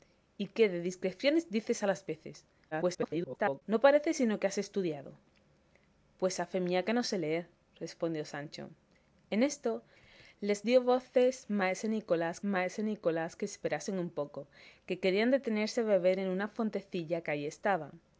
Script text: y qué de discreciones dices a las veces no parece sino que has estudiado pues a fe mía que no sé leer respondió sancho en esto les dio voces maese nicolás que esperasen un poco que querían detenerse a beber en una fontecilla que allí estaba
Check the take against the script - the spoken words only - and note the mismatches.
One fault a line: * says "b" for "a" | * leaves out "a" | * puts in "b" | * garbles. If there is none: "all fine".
* garbles
* puts in "maese nicolás"